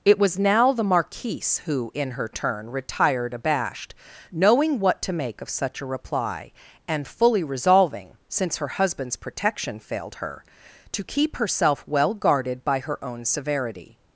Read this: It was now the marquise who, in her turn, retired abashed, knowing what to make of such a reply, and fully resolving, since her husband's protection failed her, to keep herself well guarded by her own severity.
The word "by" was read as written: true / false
true